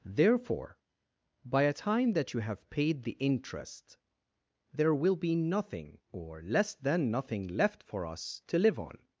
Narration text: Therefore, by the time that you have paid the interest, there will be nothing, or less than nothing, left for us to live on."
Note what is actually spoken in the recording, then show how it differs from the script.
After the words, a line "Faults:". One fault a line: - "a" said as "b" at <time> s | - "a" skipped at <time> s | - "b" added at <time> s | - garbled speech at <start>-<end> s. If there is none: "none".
Therefore, by a time that you have paid the interest, there will be nothing, or less than nothing, left for us to live on."
Faults:
- "the" said as "a" at 1.6 s